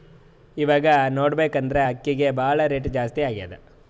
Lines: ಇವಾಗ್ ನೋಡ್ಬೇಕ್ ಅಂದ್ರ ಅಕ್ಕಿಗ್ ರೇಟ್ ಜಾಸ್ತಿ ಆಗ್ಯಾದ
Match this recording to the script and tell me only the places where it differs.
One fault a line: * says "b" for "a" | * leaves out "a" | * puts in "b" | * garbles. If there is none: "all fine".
* puts in "ಭಾಳ್"